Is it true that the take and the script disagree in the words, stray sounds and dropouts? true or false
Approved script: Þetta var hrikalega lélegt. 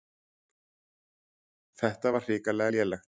false